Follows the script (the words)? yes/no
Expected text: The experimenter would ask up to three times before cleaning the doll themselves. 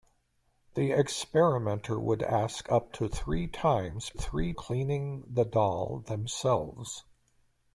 no